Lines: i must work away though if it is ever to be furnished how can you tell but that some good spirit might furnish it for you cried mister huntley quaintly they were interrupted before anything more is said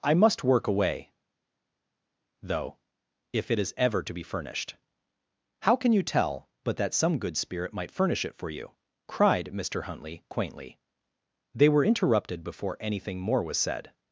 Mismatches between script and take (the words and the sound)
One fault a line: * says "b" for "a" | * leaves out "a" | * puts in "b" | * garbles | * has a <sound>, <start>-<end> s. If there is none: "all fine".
* says "was" for "is"